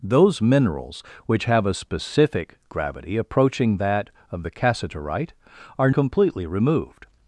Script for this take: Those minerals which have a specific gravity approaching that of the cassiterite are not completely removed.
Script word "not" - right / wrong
wrong